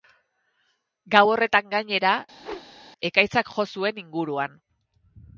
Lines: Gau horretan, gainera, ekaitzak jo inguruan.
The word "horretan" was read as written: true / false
true